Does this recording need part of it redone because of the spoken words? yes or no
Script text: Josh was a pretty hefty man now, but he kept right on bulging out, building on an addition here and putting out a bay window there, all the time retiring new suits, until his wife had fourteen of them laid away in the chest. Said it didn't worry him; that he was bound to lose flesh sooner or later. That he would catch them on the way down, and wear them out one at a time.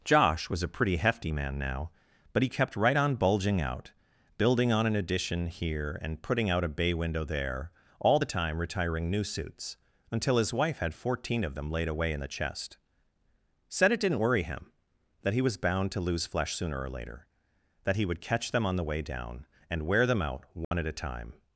no